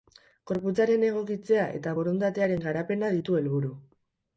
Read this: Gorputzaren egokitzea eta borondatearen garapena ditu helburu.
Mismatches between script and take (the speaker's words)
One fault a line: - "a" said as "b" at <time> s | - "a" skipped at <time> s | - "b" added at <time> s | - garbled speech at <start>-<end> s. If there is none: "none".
none